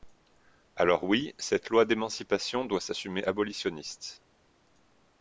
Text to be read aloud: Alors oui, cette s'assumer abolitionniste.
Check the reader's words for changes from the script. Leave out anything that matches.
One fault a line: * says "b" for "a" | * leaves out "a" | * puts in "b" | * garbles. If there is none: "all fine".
* puts in "loi d'émancipation doit"